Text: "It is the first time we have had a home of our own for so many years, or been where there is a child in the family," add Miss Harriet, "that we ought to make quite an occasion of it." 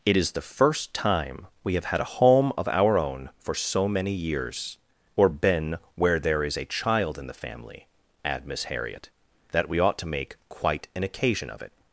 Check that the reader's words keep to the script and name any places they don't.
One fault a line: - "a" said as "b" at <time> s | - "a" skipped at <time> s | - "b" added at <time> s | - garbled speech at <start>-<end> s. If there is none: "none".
none